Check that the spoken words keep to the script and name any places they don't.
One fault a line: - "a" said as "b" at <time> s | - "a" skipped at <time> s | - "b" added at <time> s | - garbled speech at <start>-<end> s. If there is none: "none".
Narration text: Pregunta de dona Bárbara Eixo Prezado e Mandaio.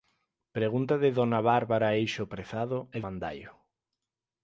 none